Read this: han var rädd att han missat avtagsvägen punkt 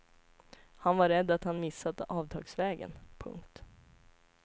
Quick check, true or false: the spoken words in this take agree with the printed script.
true